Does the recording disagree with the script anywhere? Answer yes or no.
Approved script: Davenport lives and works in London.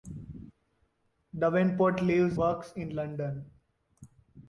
yes